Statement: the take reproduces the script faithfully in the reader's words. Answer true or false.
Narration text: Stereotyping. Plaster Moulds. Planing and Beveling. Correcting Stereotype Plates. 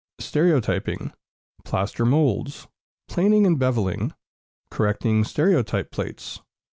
true